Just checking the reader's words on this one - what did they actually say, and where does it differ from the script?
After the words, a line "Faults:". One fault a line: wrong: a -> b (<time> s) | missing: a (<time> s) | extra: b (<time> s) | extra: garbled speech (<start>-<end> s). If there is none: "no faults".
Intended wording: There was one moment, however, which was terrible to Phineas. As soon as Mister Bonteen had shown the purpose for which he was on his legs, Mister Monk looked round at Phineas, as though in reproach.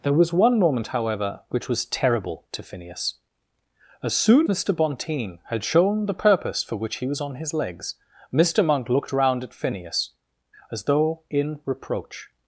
There was one moment, however, which was terrible to Phineas. As soon Mister Bonteen had shown the purpose for which he was on his legs, Mister Monk looked round at Phineas, as though in reproach.
Faults:
missing: as (4.5 s)